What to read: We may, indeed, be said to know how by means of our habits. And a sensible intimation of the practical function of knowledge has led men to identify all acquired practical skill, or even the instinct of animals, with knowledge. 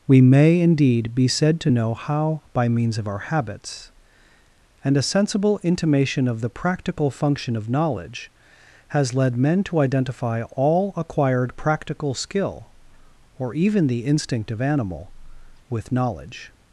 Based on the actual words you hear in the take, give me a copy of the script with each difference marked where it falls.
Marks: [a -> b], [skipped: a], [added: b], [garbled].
We may, indeed, be said to know how by means of our habits. And a sensible intimation of the practical function of knowledge has led men to identify all acquired practical skill, or even the instinct of [animals, -> animal] with knowledge.